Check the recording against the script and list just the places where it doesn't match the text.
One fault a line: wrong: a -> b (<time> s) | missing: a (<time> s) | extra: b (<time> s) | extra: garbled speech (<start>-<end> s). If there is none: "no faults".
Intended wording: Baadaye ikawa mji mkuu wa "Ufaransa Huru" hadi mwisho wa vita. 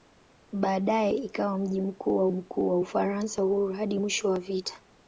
extra: mkuu wa (2.3 s)